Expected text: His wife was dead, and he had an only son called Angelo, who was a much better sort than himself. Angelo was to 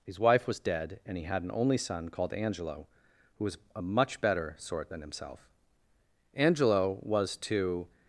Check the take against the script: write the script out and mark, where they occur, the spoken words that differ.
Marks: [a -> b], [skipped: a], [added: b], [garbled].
His wife was dead, and he had an only son called Angelo, who was a much better sort than himself. Angelo was to